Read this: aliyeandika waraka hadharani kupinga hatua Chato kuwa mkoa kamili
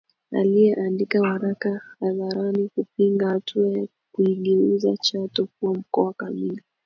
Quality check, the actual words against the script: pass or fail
fail